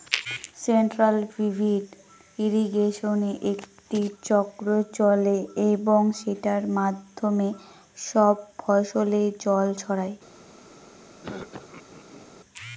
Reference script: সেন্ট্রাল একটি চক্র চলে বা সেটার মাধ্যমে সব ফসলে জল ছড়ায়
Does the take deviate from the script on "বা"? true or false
true